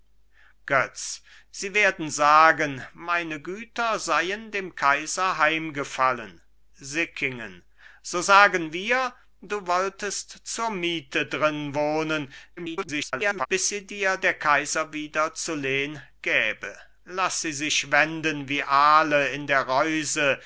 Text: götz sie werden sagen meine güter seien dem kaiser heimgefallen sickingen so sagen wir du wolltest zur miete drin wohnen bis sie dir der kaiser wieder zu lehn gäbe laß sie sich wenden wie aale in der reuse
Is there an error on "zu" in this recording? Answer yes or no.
no